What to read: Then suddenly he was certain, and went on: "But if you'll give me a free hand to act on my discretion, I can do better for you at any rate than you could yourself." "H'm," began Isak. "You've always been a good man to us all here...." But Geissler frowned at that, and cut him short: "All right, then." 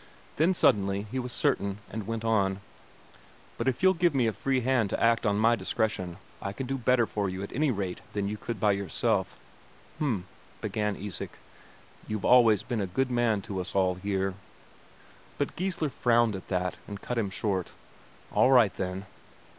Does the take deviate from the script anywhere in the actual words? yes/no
yes